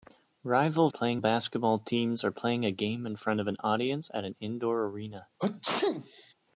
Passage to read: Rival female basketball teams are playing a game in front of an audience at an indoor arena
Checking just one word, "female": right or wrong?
wrong